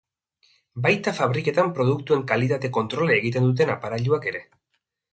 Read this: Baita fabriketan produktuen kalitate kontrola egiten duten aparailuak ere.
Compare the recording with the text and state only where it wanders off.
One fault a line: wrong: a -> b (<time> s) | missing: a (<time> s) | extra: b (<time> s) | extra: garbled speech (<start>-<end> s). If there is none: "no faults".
no faults